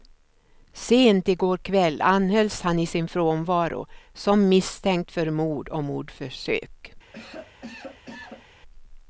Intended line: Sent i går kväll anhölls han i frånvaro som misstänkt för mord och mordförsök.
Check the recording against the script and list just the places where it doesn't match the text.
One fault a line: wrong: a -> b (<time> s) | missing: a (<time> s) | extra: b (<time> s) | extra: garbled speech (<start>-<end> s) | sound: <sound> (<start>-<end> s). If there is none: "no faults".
extra: sin (2.9 s)
sound: cough (7.1-8.5 s)